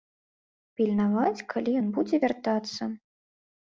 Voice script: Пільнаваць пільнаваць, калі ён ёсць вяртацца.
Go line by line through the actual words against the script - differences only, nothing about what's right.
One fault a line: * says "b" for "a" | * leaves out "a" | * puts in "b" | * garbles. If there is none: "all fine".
* leaves out "пільнаваць"
* says "будзе" for "ёсць"